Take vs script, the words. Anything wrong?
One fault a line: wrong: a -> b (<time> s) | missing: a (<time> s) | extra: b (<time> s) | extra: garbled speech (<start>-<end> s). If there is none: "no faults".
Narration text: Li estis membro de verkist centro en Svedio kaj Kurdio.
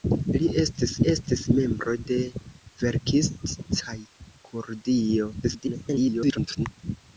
extra: estis (1.1 s)
missing: centro en Svedio (3.5 s)
extra: garbled speech (5.4-6.7 s)